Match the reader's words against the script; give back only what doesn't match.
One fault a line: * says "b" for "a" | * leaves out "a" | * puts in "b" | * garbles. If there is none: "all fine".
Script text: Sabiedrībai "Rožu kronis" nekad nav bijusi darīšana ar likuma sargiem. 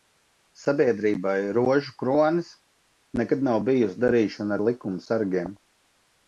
all fine